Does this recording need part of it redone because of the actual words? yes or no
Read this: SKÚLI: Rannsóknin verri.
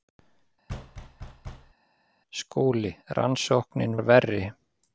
no